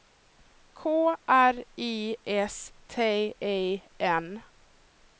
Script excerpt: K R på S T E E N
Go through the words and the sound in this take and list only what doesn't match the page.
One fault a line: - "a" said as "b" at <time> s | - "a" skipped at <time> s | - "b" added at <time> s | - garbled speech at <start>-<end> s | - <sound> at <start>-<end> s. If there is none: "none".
- "på" said as "I" at 1.8 s
- "E" skipped at 3.8 s